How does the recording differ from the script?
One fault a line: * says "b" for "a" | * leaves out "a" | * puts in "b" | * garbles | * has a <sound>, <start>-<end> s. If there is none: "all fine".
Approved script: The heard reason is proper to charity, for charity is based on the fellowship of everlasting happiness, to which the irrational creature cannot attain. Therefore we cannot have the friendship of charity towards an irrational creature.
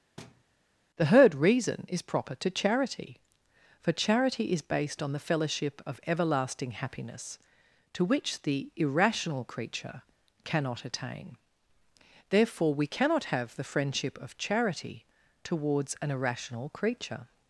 * has a thud, 0.2-0.4 s